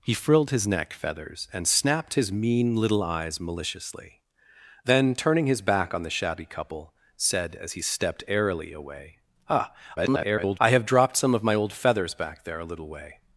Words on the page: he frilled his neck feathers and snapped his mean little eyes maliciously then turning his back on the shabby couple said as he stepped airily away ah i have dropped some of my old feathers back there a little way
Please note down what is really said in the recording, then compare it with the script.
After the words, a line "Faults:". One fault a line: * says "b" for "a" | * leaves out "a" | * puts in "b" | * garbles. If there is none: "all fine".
he frilled his neck feathers and snapped his mean little eyes maliciously then turning his back on the shabby couple said as he stepped airily away ah [garbled] i have dropped some of my old feathers back there a little way
Faults:
* garbles